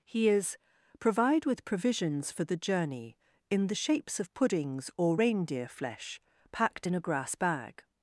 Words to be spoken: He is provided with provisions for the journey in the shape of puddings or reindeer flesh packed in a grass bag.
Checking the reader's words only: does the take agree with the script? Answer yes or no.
no